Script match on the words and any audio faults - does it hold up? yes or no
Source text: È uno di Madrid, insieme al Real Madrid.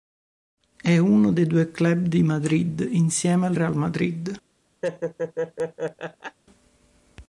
no